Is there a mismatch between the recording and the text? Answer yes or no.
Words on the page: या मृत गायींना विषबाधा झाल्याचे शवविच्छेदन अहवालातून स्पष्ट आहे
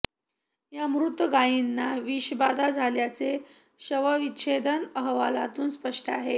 no